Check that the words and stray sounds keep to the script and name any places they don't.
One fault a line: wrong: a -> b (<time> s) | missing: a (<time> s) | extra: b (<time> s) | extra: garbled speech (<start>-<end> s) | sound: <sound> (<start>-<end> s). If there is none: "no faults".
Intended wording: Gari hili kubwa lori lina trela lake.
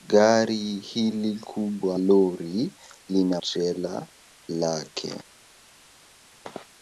no faults